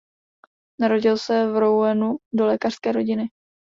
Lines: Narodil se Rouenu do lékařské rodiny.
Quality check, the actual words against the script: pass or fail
fail